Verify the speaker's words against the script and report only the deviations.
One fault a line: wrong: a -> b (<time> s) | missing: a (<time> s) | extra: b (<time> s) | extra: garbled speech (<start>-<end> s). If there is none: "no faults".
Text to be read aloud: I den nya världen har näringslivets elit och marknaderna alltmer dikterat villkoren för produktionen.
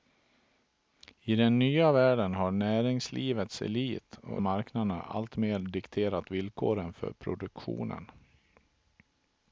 no faults